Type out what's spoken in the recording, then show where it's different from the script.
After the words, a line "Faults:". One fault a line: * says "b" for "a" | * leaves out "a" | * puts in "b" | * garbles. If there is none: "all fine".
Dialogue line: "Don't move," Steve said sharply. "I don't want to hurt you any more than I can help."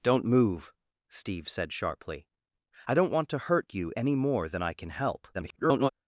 "Don't move," Steve said sharply. "I don't want to hurt you any more than I can help." [garbled]
Faults:
* garbles